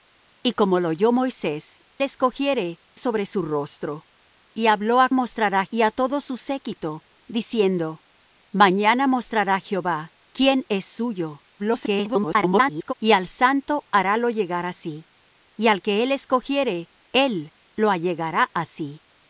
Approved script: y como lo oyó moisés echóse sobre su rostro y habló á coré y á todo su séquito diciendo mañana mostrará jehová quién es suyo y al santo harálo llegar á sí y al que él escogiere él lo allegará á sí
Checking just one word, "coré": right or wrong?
wrong